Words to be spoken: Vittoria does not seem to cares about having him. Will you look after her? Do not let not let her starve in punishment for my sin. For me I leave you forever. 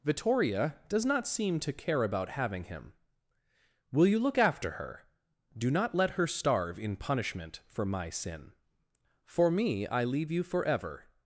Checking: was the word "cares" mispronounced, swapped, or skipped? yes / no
yes